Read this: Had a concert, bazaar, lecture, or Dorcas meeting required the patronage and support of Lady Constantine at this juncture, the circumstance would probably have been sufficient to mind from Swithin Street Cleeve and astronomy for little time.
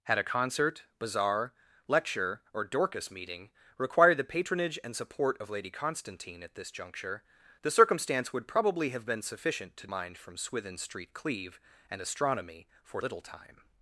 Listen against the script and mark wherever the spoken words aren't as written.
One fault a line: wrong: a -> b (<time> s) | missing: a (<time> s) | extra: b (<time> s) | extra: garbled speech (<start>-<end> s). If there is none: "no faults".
no faults